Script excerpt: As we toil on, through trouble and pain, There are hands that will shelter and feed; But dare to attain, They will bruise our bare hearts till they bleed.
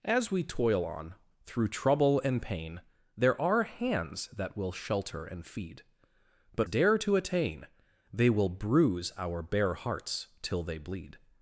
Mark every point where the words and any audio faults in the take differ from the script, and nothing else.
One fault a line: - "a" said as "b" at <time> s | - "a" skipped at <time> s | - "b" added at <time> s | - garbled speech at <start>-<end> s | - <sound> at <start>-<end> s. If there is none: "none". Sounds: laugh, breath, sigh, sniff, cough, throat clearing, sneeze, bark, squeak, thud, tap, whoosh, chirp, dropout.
none